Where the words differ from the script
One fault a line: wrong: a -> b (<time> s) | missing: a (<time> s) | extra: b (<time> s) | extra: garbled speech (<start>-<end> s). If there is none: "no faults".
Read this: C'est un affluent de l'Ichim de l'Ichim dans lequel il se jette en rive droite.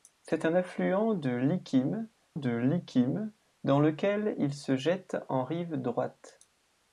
no faults